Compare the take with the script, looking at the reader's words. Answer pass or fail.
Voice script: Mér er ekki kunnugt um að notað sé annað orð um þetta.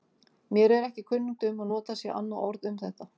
pass